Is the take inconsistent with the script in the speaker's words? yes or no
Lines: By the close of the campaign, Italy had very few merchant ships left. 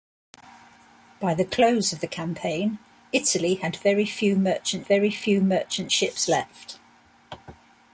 yes